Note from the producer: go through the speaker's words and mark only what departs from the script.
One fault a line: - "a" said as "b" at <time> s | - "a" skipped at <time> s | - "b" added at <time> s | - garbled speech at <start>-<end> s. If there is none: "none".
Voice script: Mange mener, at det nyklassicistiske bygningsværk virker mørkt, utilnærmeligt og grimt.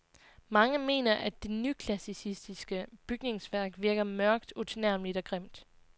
none